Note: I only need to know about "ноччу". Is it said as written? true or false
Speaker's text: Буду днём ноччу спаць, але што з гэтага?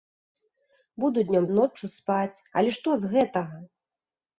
true